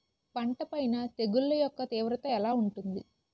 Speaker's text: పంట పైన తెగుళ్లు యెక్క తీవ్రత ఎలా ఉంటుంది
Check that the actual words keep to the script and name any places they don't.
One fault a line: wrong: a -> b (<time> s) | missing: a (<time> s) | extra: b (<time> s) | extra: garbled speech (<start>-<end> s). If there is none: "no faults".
no faults